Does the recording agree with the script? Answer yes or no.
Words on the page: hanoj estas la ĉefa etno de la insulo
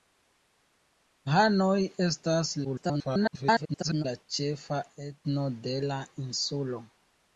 no